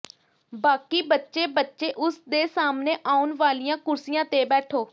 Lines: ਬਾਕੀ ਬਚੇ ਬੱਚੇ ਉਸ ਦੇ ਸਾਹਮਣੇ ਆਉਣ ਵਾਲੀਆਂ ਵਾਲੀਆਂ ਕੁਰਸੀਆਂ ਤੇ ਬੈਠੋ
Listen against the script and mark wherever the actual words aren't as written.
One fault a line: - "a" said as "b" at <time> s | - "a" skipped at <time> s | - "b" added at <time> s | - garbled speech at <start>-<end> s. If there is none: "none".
- "ਵਾਲੀਆਂ" skipped at 3.8 s